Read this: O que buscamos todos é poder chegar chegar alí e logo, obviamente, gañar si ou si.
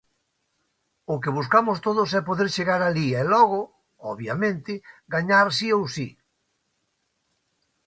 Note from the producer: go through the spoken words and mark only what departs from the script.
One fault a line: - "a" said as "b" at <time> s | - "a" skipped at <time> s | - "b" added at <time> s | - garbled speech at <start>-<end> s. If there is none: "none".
- "chegar" skipped at 2.8 s